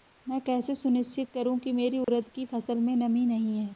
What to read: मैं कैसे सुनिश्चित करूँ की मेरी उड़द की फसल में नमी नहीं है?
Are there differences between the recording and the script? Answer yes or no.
no